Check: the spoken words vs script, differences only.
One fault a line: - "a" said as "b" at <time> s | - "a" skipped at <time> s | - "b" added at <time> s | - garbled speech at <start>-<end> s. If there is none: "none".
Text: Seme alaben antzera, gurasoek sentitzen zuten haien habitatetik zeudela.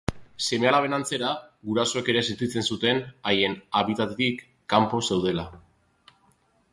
- "ere" added at 2.1 s
- "kanpo" added at 4.7 s